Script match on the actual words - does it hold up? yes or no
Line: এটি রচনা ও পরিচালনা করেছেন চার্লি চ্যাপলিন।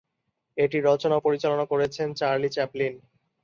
yes